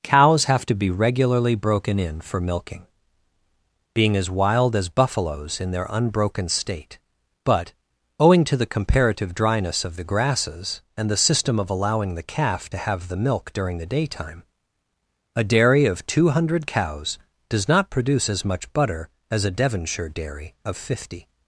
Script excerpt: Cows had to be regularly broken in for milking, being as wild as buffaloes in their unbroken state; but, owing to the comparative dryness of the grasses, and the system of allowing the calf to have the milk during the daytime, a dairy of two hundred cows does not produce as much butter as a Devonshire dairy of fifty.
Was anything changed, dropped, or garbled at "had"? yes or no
yes